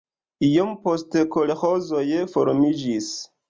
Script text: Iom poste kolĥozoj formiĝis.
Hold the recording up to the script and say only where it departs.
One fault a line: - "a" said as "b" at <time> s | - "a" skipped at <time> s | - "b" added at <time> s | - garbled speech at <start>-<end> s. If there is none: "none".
none